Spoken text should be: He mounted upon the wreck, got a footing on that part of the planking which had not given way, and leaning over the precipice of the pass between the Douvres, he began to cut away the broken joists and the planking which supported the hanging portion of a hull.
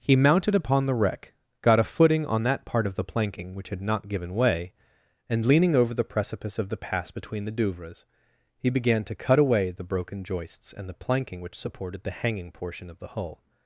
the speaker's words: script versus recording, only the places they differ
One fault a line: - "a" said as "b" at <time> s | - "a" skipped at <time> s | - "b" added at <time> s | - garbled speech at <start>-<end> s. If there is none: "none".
- "a" said as "the" at 13.0 s